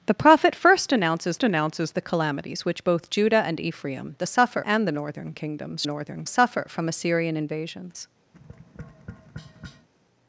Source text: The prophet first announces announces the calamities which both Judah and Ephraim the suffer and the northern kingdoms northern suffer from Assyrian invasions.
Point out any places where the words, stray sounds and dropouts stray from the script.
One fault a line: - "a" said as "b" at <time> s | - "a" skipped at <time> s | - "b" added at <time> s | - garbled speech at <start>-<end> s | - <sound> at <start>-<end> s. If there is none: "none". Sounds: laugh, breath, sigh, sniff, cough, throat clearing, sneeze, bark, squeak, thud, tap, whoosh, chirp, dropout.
- tap at 8.3-9.9 s